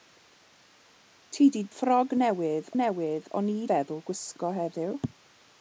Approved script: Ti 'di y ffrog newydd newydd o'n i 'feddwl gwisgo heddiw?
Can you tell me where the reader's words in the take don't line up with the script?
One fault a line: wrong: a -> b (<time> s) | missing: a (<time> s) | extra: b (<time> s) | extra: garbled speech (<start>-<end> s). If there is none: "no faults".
no faults